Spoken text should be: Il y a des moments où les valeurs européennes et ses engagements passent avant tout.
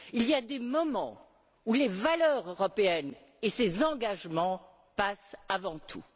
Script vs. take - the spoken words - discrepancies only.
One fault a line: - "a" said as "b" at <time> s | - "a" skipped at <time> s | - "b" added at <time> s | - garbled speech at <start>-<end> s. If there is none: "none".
none